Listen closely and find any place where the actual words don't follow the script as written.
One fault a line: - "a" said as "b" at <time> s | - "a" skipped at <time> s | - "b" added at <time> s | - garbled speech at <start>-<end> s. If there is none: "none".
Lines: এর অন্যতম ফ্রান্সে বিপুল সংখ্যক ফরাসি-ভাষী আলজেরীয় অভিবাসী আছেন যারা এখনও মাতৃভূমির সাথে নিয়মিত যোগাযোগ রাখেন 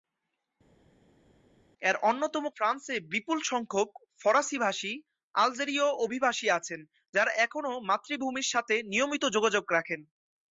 none